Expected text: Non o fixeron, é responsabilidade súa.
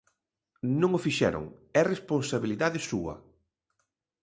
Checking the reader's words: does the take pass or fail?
pass